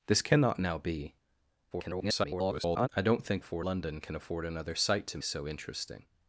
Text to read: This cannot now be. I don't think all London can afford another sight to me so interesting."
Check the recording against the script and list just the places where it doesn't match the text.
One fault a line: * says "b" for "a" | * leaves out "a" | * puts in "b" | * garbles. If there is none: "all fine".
* garbles
* says "afford" for "all"
* leaves out "me"